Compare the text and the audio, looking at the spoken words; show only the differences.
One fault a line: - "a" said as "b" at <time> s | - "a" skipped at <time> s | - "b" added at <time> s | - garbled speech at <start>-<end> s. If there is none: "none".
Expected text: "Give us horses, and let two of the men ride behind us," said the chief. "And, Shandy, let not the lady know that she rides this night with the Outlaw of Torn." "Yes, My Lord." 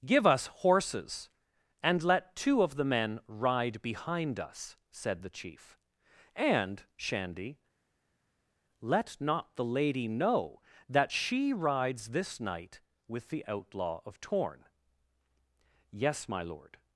none